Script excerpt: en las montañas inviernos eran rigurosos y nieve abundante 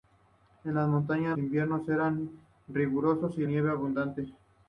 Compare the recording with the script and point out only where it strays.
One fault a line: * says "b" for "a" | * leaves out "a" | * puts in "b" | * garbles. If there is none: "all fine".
all fine